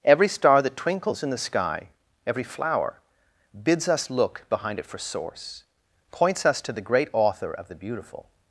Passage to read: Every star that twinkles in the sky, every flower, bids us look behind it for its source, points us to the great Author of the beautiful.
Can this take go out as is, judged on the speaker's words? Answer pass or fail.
fail